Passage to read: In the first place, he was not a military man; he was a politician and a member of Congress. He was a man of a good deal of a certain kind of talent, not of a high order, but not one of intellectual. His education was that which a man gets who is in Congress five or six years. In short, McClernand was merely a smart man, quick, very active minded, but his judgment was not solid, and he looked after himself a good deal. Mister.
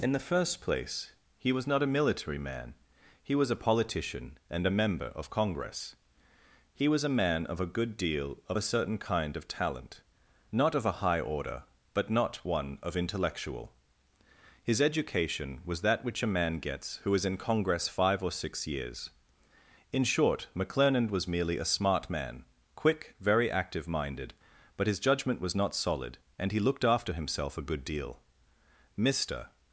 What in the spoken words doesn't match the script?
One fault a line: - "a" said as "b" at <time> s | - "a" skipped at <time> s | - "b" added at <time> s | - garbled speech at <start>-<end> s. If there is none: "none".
none